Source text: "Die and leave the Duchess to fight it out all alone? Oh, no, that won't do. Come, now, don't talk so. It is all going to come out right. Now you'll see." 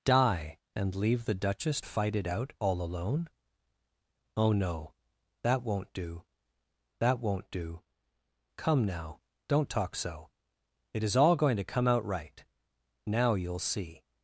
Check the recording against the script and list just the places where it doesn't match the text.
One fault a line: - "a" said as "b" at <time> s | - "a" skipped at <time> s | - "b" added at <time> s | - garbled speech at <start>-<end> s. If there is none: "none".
- "to" skipped at 1.8 s
- "that won't do" added at 7.0 s